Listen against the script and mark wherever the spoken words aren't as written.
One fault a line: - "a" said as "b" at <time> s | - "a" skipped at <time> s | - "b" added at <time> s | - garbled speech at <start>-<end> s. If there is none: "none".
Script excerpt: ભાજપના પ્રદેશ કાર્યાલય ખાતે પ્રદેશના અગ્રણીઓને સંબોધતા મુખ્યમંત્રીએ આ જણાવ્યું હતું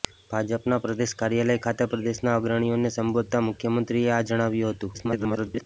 - garbled speech at 4.9-5.6 s